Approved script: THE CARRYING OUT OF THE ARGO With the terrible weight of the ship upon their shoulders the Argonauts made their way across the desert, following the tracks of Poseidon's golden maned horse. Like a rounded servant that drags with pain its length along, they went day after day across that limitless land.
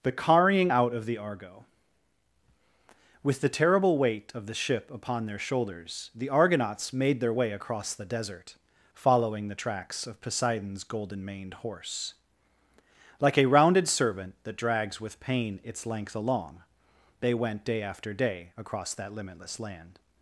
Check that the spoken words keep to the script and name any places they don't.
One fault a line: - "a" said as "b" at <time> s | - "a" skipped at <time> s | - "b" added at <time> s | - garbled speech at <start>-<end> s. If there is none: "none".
none